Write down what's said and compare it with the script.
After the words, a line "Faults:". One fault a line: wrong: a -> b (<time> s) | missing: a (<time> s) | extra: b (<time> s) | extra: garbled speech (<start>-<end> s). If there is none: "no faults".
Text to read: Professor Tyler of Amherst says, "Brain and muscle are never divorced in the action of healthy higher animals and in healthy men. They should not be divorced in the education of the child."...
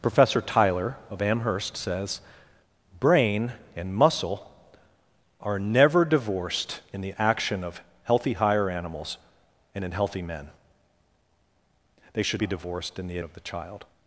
Professor Tyler of Amherst says, "Brain and muscle are never divorced in the action of healthy higher animals and in healthy men. They should be divorced in the of the child."...
Faults:
missing: not (12.4 s)
missing: education (13.2 s)